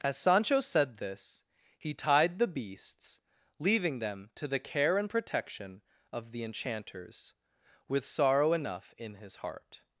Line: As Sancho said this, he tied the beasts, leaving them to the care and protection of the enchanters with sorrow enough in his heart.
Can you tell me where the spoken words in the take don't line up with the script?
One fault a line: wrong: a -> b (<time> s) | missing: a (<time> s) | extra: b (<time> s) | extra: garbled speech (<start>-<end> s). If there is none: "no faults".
no faults